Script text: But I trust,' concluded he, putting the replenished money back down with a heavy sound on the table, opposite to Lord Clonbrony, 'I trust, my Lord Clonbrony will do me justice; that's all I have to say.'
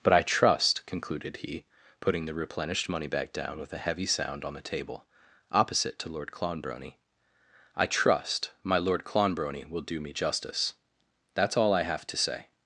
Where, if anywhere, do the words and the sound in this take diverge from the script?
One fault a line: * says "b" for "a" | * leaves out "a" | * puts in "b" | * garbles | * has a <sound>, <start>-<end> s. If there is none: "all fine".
all fine